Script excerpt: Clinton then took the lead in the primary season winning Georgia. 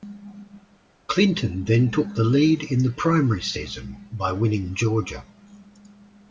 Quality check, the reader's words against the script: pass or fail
fail